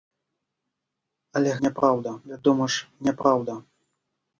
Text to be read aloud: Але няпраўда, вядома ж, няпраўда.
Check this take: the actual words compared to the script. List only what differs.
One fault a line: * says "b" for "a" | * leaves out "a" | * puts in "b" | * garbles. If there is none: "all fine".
all fine